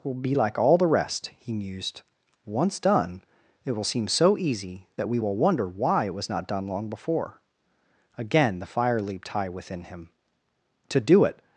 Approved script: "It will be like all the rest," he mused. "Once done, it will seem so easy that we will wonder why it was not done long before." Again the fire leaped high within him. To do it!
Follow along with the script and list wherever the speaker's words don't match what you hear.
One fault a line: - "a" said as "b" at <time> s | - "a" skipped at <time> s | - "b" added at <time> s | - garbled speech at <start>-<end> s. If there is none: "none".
- "It" skipped at 0.0 s